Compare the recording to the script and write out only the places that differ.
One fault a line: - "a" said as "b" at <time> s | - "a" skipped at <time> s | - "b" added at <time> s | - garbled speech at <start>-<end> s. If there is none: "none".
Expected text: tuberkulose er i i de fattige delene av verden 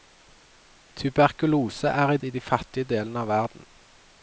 none